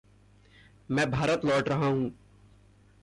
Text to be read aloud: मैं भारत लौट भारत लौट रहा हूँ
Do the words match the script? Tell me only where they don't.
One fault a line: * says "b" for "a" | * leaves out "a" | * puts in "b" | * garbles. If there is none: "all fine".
* leaves out "भारत लौट"